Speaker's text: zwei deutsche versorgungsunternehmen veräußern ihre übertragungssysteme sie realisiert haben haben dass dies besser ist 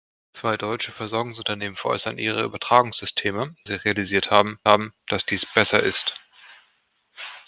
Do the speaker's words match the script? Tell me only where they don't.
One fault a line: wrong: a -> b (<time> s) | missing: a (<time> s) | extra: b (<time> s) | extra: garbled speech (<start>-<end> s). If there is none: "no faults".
no faults